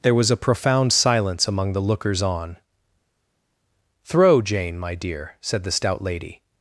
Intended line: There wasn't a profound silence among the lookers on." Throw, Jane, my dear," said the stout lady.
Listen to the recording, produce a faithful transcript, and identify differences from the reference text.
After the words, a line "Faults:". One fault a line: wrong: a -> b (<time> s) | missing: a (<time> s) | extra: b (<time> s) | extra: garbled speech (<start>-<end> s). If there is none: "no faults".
There was a profound silence among the lookers on." Throw, Jane, my dear," said the stout lady.
Faults:
wrong: wasn't -> was (0.1 s)